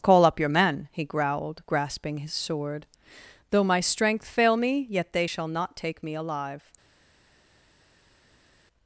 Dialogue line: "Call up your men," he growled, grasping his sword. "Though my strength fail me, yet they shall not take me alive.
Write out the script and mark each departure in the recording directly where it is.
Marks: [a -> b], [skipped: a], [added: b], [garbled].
"Call up your men," he growled, grasping his sword. "Though my strength fail me, yet they shall not take me alive.